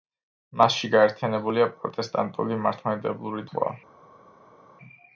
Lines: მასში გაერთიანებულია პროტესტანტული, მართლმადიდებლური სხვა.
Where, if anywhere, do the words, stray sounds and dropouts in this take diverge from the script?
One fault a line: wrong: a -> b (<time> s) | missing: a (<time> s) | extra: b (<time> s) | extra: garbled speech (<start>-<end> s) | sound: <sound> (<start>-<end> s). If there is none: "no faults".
no faults